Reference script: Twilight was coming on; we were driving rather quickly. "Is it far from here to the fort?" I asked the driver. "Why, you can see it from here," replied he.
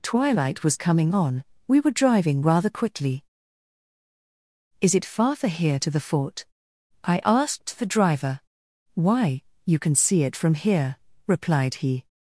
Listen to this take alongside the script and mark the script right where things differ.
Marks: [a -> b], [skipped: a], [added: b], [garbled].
Twilight was coming on; we were driving rather quickly. "Is it far [from -> for] here to the fort?" I asked the driver. "Why, you can see it from here," replied he.